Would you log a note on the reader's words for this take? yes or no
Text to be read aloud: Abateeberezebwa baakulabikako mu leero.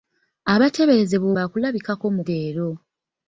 no